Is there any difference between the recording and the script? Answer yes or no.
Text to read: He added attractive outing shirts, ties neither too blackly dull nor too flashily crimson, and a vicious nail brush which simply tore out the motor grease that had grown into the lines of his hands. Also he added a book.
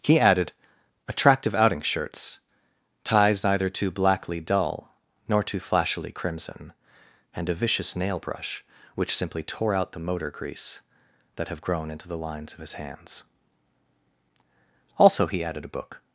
yes